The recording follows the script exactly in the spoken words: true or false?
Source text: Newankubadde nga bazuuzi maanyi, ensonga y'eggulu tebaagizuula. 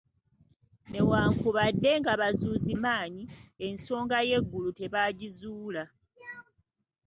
true